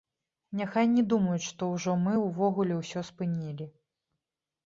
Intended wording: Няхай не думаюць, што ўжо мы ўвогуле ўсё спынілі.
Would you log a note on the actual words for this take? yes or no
no